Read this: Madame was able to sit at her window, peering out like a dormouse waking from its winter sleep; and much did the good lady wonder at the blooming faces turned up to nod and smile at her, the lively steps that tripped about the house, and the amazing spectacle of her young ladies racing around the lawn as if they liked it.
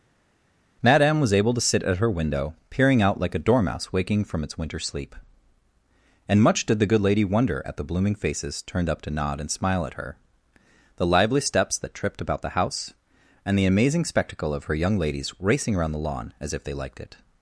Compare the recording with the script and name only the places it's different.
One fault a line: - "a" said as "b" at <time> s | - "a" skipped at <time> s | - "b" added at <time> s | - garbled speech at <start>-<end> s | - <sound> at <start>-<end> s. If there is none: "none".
none